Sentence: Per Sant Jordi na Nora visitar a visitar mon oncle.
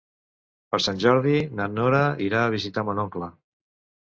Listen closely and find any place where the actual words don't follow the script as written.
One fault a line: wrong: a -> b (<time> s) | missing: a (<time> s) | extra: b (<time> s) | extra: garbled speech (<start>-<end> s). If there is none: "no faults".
wrong: visitar -> irà (2.3 s)